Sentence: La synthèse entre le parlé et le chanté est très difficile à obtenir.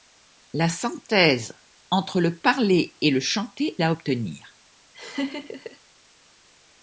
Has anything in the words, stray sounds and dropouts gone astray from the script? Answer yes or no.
yes